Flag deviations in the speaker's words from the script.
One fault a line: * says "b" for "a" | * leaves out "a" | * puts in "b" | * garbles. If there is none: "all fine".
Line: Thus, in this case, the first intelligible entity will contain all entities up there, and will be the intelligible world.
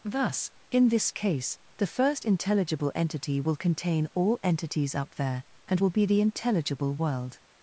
all fine